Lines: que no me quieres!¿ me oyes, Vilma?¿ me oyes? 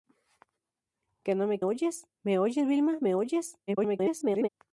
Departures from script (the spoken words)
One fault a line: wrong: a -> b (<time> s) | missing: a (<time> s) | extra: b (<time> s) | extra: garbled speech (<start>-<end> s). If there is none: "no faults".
wrong: quieres -> oyes (1.6 s)
extra: garbled speech (3.7-4.5 s)